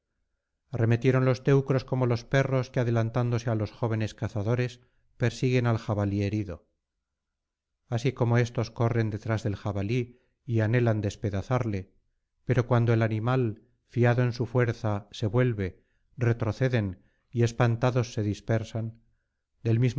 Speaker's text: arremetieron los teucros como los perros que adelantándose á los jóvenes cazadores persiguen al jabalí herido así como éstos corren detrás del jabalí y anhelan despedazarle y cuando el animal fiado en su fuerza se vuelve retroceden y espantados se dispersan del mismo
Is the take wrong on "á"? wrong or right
right